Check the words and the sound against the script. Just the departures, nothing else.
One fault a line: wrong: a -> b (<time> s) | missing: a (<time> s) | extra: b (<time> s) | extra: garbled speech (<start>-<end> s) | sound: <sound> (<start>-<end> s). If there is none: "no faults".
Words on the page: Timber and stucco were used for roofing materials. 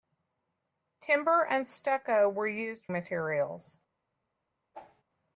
missing: for roofing (2.9 s)
sound: whoosh (4.7-5.0 s)